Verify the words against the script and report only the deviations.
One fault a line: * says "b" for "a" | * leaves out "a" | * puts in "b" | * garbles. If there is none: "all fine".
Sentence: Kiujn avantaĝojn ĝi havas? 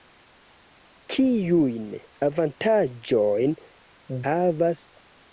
* leaves out "ĝi"